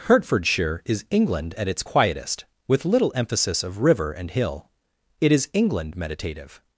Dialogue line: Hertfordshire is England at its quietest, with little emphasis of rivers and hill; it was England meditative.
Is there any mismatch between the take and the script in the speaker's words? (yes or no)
yes